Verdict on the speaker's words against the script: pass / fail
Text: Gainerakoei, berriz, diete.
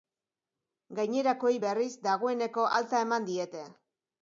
fail